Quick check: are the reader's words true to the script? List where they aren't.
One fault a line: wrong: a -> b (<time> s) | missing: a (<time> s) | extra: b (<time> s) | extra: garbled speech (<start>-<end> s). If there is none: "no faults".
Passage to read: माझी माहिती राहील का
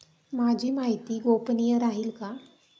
extra: गोपनीय (1.2 s)